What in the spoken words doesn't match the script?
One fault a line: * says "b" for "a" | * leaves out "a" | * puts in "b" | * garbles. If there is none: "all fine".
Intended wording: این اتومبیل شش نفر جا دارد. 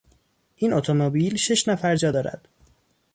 all fine